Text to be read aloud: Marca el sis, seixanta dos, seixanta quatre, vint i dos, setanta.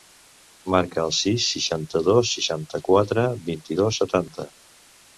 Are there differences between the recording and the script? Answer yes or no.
no